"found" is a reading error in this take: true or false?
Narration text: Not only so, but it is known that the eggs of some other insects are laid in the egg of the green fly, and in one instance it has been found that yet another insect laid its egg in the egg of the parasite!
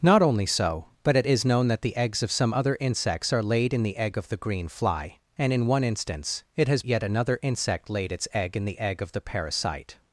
true